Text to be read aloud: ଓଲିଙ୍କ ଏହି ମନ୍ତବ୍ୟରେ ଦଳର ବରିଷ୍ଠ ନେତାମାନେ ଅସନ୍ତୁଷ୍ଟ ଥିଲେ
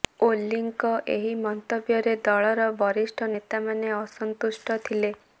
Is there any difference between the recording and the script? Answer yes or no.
no